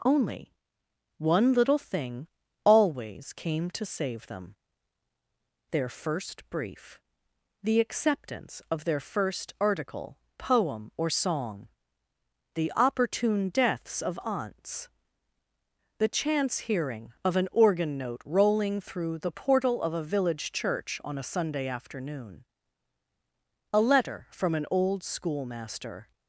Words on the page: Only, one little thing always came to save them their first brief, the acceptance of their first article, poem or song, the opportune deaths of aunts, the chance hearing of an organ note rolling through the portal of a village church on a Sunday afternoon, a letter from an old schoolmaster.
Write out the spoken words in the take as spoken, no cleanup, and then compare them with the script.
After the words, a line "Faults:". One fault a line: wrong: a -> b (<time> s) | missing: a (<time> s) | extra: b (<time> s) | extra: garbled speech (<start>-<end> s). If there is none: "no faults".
Only, one little thing always came to save them their first brief, the acceptance of their first article, poem or song, the opportune deaths of aunts, the chance hearing of an organ note rolling through the portal of a village church on a Sunday afternoon, a letter from an old schoolmaster.
Faults:
no faults